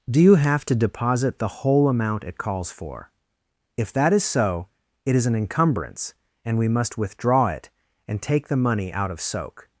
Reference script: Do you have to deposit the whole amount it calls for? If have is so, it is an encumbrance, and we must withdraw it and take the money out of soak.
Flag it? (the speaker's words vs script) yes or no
yes